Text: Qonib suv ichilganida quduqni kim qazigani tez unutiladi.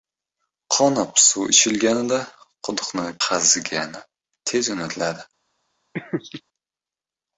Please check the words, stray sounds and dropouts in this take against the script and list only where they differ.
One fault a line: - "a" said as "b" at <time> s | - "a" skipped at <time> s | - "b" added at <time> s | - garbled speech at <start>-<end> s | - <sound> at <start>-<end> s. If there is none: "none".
- "kim" skipped at 3.0 s
- laugh at 5.9-6.4 s